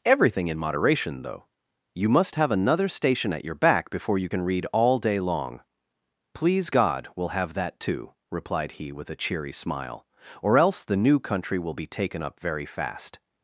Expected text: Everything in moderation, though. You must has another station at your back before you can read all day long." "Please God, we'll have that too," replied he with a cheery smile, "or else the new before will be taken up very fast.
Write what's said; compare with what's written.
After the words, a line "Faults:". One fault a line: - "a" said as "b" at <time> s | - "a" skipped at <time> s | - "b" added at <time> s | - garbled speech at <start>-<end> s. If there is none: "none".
Everything in moderation, though. You must have another station at your back before you can read all day long." "Please God, we'll have that too," replied he with a cheery smile, "or else the new country will be taken up very fast.
Faults:
- "has" said as "have" at 2.3 s
- "before" said as "country" at 11.2 s